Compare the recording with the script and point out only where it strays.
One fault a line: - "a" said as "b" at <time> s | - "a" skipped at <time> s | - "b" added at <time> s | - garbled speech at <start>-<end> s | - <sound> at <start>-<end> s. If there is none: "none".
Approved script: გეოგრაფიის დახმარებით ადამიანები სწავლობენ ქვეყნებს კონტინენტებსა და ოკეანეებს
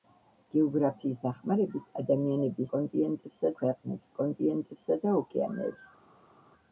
- "სწავლობენ" said as "კონტინენტებსა" at 2.7 s